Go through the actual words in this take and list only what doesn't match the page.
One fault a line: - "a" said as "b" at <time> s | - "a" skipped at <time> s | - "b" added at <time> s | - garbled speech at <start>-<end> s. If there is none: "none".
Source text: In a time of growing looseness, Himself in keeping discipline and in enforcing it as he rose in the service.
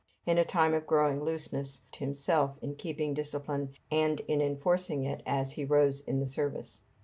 none